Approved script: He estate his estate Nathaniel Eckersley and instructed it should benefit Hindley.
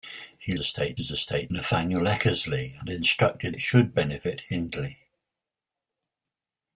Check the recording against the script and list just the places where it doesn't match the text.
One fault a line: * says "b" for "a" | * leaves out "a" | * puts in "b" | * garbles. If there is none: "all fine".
all fine